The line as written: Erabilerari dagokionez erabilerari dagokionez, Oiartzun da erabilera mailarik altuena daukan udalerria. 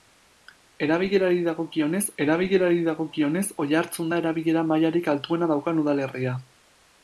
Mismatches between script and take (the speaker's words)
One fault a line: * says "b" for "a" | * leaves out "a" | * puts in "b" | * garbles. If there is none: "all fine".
all fine